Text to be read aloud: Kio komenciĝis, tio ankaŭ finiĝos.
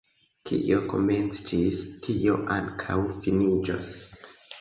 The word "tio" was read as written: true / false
true